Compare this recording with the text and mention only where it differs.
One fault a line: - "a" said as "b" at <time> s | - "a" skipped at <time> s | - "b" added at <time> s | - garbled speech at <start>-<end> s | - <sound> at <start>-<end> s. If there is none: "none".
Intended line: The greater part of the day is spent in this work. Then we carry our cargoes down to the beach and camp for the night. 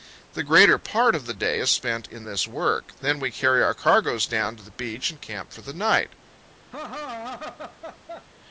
- laugh at 6.7-8.3 s